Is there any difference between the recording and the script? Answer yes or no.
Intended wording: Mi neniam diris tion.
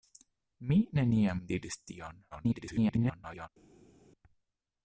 yes